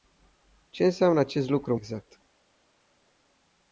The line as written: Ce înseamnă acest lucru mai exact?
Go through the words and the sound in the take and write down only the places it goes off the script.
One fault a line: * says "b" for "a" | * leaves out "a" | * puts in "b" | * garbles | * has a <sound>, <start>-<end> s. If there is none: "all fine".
* leaves out "mai"